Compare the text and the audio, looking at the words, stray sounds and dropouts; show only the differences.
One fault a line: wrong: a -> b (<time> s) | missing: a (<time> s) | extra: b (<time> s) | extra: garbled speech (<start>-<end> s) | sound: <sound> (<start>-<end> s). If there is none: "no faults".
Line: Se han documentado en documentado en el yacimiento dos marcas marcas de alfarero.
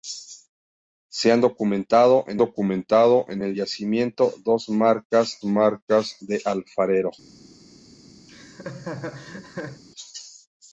sound: laugh (8.3-9.8 s)